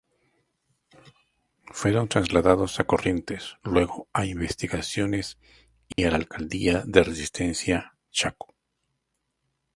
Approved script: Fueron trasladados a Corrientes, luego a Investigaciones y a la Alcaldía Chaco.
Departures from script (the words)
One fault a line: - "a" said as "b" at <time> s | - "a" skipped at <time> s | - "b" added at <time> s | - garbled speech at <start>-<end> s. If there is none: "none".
- "de Resistencia" added at 6.9 s